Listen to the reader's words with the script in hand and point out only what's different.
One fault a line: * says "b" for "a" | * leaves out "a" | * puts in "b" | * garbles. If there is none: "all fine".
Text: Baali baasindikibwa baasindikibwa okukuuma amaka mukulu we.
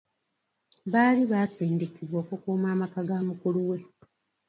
* leaves out "baasindikibwa"
* puts in "ga"